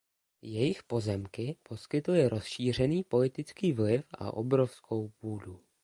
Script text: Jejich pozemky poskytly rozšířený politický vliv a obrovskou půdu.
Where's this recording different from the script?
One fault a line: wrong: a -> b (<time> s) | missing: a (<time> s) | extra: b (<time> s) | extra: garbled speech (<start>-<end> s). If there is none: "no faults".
no faults